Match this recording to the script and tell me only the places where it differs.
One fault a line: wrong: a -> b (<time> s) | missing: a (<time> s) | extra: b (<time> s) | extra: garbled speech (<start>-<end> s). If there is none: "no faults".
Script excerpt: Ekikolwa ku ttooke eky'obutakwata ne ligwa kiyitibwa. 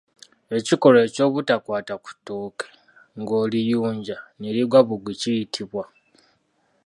extra: eky'obutakwata (1.1 s)
wrong: eky'obutakwata -> ng'oliyunja (3.2 s)
extra: bugwi (4.9 s)